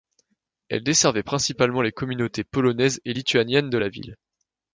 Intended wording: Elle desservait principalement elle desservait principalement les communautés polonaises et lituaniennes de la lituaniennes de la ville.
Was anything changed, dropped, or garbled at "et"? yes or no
no